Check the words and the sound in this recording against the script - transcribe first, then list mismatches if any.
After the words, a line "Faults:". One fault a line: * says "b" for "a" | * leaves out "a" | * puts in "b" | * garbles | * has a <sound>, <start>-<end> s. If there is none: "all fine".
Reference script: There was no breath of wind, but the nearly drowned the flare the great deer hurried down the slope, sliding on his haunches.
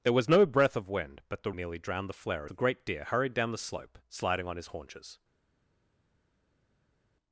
There was no breath of wind, but the nearly drowned the flare the great deer hurried down the slope, sliding on his haunches.
Faults:
all fine